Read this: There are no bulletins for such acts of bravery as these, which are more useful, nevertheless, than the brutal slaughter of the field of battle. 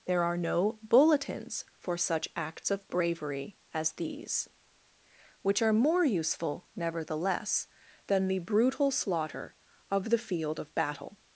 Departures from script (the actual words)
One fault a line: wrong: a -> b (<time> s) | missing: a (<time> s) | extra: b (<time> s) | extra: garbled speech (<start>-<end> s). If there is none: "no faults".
no faults